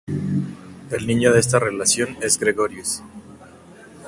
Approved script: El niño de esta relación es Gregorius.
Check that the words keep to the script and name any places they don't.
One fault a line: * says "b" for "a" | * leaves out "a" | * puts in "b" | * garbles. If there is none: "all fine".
all fine